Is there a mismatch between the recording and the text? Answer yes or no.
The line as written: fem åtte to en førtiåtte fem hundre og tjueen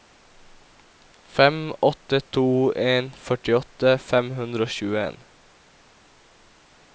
no